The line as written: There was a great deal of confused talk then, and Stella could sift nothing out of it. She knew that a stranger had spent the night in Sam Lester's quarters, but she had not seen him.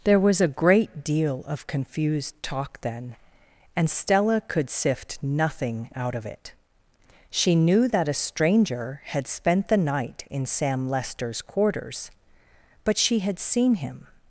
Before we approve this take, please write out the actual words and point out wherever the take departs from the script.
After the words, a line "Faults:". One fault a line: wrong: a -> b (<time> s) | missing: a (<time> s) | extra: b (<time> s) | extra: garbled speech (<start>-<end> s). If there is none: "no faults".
There was a great deal of confused talk then, and Stella could sift nothing out of it. She knew that a stranger had spent the night in Sam Lester's quarters, but she had seen him.
Faults:
missing: not (13.4 s)